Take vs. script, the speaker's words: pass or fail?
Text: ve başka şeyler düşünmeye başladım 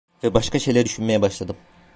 pass